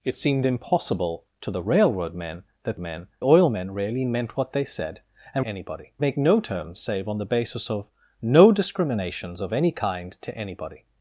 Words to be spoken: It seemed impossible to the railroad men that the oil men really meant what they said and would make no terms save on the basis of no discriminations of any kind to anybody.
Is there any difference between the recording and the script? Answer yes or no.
yes